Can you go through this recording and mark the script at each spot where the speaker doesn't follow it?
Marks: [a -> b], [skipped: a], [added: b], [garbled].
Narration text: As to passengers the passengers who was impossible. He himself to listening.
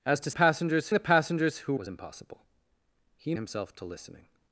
As to passengers the passengers who was impossible. He himself to listening.